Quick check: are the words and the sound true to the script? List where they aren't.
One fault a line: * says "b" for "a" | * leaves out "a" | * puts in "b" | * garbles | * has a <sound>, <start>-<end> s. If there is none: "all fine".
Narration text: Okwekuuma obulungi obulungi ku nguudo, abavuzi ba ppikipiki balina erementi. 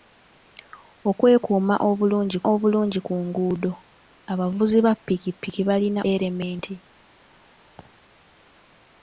* has a laugh, 7.8-7.9 s